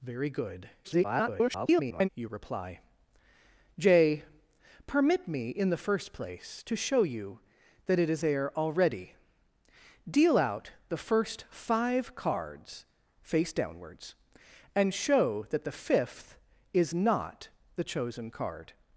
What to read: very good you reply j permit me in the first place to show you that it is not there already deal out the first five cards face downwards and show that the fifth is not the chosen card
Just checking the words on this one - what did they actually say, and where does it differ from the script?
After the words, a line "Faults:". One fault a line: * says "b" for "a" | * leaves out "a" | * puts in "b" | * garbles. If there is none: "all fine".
very good [garbled] you reply j permit me in the first place to show you that it is there already deal out the first five cards face downwards and show that the fifth is not the chosen card
Faults:
* garbles
* leaves out "not"